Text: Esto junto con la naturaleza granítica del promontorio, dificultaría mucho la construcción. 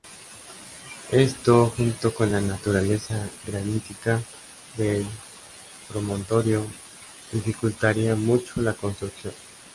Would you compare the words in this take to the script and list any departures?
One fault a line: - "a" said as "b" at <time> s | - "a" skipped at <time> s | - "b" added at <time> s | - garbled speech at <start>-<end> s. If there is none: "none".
none